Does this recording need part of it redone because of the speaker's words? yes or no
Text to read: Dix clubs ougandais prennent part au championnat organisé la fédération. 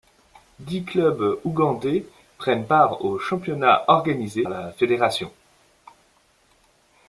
no